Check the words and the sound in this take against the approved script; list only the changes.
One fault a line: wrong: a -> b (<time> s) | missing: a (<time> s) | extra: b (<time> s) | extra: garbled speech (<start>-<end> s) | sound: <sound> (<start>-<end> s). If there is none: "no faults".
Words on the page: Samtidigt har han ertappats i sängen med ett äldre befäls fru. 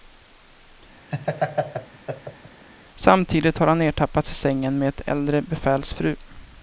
sound: laugh (1.1-2.6 s)